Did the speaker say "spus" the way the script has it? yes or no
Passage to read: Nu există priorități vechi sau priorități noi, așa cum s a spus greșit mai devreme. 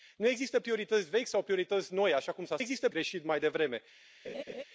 no